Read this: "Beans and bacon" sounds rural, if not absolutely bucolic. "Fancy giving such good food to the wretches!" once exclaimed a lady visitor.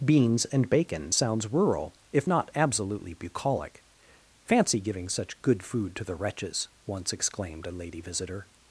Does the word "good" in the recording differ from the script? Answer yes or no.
no